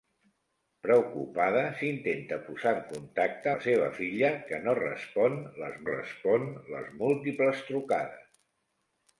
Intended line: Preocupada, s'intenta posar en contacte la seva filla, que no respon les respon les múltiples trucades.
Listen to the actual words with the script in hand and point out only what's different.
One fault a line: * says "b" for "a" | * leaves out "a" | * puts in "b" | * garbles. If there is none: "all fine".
all fine